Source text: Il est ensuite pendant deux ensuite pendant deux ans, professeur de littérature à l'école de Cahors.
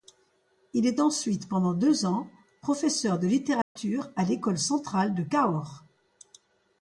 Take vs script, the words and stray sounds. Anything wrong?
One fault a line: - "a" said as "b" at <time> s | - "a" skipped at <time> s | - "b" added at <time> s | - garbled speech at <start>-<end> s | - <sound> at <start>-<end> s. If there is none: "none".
- "ensuite pendant deux" skipped at 2.1 s
- dropout at 3.6-3.8 s
- "centrale" added at 4.6 s